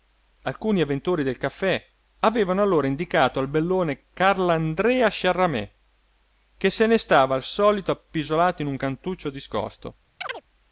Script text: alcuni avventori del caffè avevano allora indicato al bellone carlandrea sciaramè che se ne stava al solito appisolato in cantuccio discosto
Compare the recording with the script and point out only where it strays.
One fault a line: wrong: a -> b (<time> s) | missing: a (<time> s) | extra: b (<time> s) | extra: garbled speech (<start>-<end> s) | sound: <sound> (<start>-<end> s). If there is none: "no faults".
extra: un (8.7 s)
sound: chirp (10.2-10.4 s)